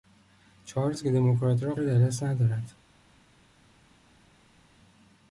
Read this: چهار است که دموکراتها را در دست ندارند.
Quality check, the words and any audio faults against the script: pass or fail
pass